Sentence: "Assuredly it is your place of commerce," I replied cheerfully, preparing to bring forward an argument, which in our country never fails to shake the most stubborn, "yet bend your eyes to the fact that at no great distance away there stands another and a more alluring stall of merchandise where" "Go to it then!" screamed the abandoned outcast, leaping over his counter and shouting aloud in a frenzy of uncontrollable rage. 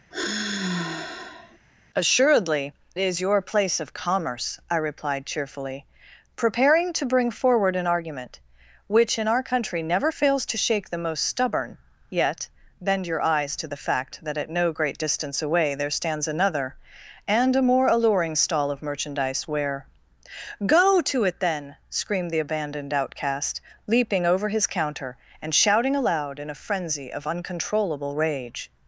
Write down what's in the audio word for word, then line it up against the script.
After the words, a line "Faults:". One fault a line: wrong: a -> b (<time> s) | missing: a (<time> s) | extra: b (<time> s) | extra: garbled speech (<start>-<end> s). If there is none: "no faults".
"Assuredly is your place of commerce," I replied cheerfully, preparing to bring forward an argument, which in our country never fails to shake the most stubborn, "yet bend your eyes to the fact that at no great distance away there stands another and a more alluring stall of merchandise where" "Go to it then!" screamed the abandoned outcast, leaping over his counter and shouting aloud in a frenzy of uncontrollable rage.
Faults:
missing: it (2.7 s)